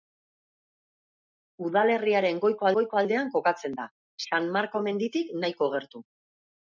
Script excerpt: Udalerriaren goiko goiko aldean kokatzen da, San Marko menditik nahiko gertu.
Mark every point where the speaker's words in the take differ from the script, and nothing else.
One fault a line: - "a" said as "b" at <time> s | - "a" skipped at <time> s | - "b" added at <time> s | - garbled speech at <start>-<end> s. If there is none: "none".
none